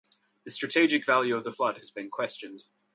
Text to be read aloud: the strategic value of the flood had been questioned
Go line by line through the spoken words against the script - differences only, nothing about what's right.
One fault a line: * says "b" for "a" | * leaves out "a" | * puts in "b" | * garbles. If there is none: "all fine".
* says "has" for "had"